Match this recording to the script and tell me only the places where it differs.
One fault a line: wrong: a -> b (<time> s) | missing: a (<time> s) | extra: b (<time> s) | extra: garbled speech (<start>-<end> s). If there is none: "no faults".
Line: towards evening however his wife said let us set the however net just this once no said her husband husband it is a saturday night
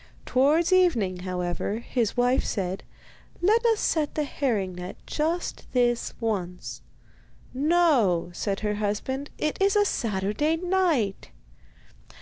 wrong: however -> herring (4.2 s)
missing: husband (9.3 s)